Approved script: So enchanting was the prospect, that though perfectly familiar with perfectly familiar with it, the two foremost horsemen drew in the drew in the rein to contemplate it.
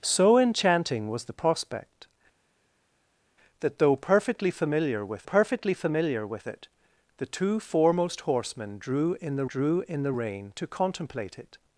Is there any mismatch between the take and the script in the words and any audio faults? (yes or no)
no